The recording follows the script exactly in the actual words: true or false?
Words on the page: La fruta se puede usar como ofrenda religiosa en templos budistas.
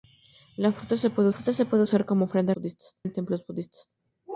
false